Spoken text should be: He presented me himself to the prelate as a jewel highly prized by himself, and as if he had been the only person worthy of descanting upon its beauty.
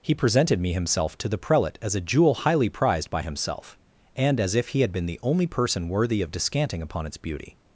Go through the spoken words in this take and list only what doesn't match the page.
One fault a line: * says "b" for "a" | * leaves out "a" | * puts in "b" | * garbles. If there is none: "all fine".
all fine